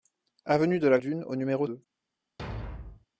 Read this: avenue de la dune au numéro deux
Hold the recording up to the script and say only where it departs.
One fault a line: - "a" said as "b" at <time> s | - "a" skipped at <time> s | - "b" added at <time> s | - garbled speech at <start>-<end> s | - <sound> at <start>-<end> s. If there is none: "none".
- thud at 2.4-3.1 s